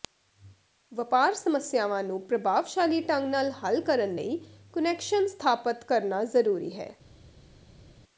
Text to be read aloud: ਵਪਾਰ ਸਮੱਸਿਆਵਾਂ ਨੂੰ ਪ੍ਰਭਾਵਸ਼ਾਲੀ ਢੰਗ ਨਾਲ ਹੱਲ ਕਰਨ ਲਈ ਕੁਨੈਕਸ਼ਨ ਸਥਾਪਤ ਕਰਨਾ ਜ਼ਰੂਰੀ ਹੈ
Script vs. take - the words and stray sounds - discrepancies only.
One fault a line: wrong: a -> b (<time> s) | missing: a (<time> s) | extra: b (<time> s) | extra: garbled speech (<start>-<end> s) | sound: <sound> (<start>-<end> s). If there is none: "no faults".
no faults